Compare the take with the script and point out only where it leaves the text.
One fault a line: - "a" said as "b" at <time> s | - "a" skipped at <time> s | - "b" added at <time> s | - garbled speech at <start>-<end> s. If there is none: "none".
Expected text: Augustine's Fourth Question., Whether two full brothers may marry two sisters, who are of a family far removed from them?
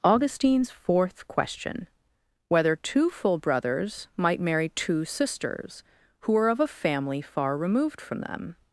- "may" said as "might" at 4.1 s